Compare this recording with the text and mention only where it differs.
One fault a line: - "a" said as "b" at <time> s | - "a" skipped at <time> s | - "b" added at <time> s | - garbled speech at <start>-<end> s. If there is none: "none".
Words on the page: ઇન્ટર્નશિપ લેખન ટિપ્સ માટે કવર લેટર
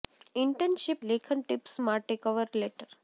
none